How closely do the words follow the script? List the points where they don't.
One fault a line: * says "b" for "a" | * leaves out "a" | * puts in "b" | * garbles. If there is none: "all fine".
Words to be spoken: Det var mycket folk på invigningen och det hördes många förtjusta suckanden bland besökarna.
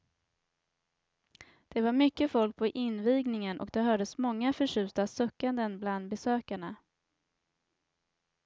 all fine